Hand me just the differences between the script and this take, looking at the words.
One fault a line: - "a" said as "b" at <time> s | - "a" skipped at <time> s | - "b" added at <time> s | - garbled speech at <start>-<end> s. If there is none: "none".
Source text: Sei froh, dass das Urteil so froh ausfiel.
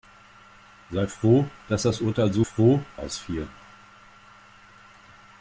none